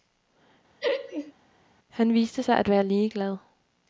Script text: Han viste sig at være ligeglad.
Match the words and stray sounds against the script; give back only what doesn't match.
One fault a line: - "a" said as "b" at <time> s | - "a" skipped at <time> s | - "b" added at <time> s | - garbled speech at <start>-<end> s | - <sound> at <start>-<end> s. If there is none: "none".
- laugh at 0.8-1.3 s